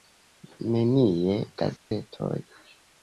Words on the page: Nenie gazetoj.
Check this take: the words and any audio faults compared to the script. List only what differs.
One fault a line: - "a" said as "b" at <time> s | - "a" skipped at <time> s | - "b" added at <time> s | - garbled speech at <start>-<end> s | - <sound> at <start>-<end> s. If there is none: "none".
- dropout at 1.8-1.9 s